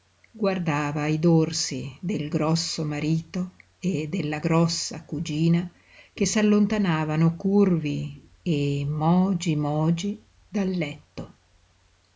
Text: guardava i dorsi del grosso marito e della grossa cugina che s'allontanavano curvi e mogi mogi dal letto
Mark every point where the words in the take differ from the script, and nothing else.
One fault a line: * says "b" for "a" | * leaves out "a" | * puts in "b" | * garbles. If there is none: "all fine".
all fine